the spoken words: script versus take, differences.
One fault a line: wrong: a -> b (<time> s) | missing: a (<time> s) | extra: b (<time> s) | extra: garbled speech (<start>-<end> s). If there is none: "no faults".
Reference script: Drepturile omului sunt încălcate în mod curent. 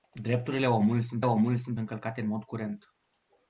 extra: omului sunt (1.2 s)